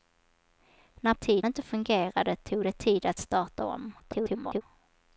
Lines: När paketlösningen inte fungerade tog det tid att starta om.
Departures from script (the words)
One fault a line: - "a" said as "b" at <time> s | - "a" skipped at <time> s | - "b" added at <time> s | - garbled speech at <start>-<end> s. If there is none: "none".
- "paketlösningen" said as "tid" at 1.1 s
- garbled speech at 4.0-4.6 s